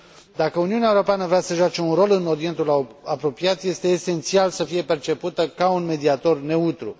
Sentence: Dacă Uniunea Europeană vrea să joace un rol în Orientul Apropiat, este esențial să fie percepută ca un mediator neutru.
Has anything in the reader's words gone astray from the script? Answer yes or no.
no